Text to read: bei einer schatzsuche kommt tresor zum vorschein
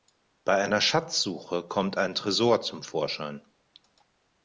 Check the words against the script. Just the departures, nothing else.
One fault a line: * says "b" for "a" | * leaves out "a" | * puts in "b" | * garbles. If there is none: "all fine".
* puts in "ein"